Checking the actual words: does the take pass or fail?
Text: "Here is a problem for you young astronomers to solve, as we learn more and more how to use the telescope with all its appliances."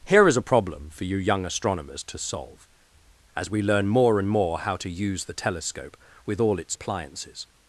pass